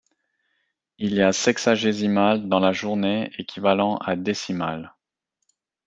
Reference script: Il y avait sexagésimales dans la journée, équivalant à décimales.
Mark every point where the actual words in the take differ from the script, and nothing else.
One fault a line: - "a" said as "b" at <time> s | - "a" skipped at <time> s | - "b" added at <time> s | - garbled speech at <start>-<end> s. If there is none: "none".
- "avait" said as "a" at 1.2 s